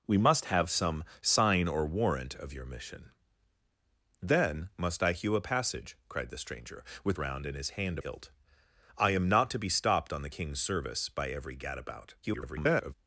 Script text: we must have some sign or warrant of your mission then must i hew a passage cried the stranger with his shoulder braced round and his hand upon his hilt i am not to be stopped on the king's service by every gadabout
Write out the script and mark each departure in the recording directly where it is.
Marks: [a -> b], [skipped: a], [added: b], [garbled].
we must have some sign or warrant of your mission then must i hew a passage cried the stranger with [skipped: his shoulder braced] round and his hand [skipped: upon his] hilt i am not to be stopped on the king's service by every gadabout [garbled]